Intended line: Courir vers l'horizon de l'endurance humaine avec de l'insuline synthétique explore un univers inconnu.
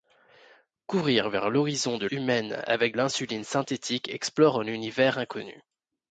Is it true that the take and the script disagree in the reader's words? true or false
true